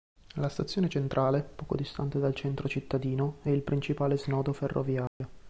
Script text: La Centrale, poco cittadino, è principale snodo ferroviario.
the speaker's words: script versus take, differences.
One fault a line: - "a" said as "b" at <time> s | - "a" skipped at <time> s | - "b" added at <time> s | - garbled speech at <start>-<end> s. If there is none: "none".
- "Stazione" added at 0.5 s
- "distante dal centro" added at 1.7 s
- "il" added at 3.5 s